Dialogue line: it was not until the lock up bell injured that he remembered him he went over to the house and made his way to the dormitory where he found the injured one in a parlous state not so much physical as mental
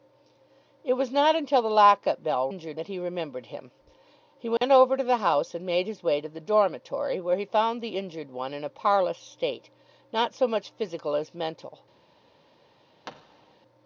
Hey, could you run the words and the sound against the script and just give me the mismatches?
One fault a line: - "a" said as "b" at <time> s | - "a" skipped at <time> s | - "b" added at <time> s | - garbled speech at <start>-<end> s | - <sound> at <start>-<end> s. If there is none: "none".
- dropout at 4.6-4.6 s
- thud at 13.0-13.6 s